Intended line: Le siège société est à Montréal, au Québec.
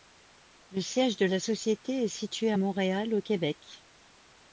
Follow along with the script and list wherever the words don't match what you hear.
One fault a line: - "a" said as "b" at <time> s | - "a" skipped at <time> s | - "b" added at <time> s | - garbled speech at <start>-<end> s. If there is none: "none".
- "de la" added at 1.2 s
- "situé" added at 2.1 s